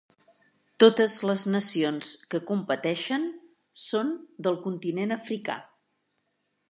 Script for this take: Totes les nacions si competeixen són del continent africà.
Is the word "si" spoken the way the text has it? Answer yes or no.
no